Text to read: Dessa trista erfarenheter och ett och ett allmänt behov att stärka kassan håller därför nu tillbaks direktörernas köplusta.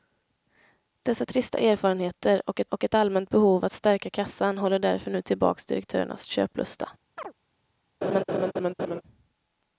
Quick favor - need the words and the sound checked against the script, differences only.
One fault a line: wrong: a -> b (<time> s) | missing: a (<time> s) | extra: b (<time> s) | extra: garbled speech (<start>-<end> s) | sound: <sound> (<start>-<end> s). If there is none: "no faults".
sound: chirp (7.2-7.3 s)
sound: laugh (8.0-9.0 s)